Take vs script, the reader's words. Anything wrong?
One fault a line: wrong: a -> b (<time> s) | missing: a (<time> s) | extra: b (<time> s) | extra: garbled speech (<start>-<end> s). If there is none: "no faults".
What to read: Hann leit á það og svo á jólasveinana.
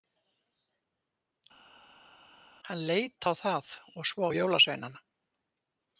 no faults